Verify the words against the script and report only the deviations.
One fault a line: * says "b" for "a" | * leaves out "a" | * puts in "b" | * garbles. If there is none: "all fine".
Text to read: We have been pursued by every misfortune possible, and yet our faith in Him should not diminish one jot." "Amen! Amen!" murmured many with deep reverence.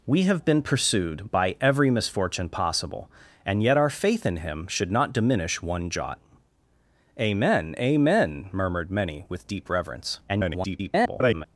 * garbles